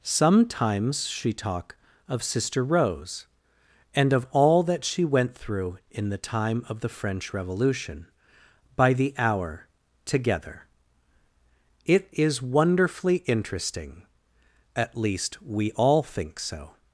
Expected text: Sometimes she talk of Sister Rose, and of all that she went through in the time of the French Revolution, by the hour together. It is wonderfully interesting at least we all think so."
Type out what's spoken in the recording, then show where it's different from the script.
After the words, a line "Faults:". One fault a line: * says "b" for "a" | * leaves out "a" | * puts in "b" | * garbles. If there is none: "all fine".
Sometimes she talk of Sister Rose, and of all that she went through in the time of the French Revolution, by the hour together. It is wonderfully interesting at least we all think so."
Faults:
all fine